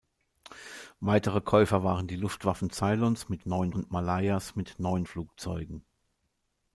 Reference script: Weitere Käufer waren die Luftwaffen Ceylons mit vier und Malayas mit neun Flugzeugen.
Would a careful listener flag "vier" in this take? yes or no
yes